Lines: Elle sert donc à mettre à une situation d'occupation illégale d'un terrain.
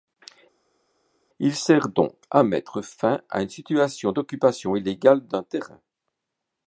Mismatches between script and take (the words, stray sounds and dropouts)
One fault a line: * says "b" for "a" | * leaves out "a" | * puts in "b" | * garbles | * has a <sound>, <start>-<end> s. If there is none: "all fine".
* says "Il" for "Elle"
* puts in "fin"